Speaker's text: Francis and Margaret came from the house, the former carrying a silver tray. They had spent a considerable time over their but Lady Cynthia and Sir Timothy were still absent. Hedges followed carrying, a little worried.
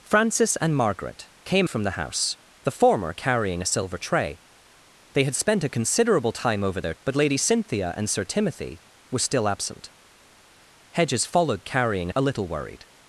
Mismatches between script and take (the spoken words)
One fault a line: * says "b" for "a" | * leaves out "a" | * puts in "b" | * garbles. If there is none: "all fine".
all fine